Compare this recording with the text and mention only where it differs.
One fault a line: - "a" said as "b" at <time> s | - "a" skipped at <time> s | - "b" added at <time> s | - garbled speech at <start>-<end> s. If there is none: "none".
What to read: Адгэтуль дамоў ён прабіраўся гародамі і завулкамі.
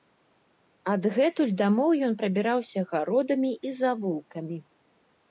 none